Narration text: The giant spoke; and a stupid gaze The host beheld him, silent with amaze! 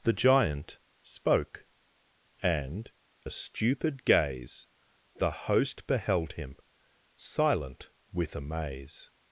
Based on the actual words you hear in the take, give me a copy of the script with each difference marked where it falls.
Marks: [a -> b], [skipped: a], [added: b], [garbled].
The giant spoke; and a stupid gaze The host beheld him, silent with amaze!